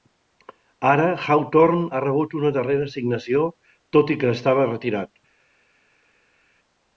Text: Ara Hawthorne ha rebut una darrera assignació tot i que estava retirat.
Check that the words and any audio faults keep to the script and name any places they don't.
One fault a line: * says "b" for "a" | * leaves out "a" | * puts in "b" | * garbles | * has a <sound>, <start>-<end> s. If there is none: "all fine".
all fine